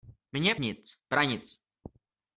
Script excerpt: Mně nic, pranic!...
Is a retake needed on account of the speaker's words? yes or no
no